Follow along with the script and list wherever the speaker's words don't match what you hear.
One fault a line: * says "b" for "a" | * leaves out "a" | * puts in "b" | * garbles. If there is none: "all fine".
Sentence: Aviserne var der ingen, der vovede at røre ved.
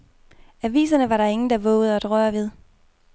all fine